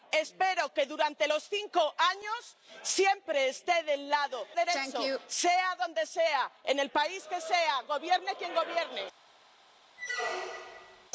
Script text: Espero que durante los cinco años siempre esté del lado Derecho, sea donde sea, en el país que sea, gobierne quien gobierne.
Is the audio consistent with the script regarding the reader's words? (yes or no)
yes